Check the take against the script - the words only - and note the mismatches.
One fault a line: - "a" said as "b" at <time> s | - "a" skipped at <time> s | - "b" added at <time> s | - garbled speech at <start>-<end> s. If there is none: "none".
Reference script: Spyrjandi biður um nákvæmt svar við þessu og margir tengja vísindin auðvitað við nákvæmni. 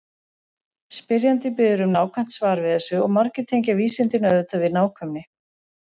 none